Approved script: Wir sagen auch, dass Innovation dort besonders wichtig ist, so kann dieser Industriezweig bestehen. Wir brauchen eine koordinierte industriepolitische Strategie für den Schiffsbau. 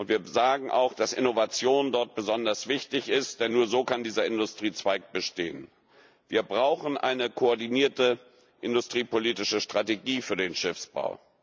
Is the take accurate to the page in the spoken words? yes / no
no